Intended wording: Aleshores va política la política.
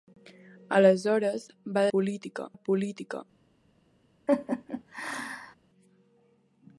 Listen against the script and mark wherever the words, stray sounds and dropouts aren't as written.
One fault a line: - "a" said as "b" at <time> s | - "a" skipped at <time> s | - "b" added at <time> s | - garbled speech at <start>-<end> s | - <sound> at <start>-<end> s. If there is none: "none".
- laugh at 4.3-5.6 s